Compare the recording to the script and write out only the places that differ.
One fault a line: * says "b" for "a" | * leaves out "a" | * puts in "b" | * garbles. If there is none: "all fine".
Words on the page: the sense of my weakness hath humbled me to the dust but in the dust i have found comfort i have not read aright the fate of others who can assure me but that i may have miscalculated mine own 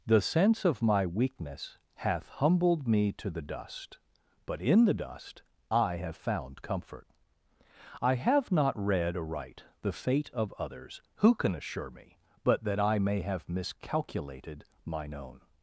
all fine